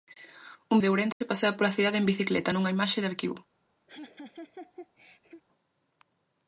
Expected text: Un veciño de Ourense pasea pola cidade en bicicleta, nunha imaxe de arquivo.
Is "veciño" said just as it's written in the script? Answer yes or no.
no